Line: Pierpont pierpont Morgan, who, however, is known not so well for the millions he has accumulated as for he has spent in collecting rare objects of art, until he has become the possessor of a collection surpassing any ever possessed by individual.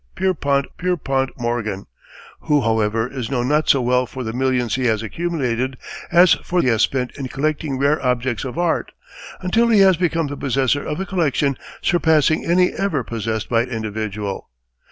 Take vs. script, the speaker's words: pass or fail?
pass